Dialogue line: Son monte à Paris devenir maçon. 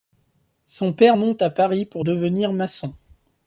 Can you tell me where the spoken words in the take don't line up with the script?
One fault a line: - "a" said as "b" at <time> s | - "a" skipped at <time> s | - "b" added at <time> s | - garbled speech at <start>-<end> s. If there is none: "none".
- "père" added at 0.9 s
- "pour" added at 1.9 s